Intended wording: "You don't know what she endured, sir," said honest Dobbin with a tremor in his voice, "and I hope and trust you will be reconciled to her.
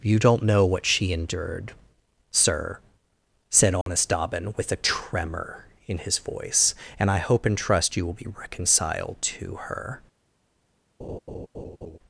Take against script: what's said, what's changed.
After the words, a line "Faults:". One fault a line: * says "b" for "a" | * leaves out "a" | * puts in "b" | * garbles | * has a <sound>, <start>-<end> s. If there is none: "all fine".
"You don't know what she endured, sir," said honest Dobbin with a tremor in his voice, "and I hope and trust you will be reconciled to her.
Faults:
* has a dropout, 3.8-3.9 s
* has a laugh, 11.0-12.0 s